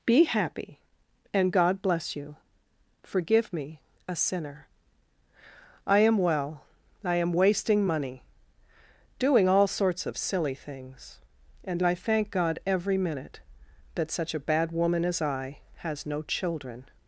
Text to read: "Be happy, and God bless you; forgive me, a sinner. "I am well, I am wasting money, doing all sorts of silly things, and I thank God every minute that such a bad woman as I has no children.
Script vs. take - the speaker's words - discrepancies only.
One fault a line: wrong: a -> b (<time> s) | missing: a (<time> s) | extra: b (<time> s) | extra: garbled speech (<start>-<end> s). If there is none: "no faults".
no faults